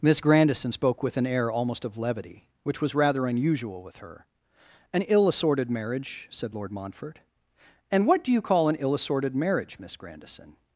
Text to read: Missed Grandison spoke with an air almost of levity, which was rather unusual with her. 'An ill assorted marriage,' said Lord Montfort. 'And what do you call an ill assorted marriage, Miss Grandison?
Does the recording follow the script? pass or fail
fail